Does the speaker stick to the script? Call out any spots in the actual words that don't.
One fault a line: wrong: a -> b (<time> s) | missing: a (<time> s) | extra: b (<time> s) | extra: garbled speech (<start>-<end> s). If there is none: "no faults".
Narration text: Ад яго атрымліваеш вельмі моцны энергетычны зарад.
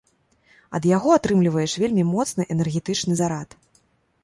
no faults